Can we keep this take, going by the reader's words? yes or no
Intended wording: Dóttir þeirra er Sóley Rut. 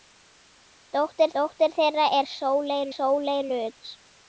no